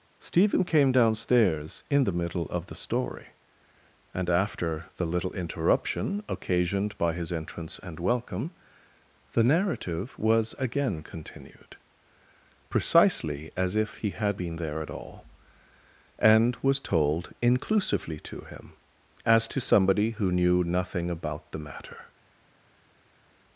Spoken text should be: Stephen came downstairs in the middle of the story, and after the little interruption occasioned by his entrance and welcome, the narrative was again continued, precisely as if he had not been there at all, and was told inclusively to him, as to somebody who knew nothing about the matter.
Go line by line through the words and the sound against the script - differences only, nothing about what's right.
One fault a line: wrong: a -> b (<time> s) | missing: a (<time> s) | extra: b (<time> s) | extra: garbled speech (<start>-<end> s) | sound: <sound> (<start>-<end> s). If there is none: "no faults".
missing: not (14.4 s)